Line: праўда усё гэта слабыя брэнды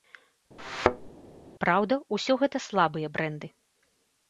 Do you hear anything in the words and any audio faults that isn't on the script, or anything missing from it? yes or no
yes